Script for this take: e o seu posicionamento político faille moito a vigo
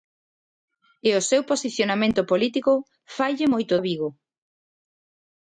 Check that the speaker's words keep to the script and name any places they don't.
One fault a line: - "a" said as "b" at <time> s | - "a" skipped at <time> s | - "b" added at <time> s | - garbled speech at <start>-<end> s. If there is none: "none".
none